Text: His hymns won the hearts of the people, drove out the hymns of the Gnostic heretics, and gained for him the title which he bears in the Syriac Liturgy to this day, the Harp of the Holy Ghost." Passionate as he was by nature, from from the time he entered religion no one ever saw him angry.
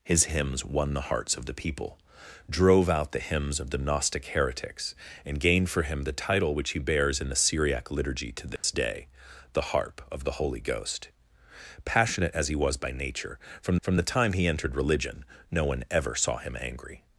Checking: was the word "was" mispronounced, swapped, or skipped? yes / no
no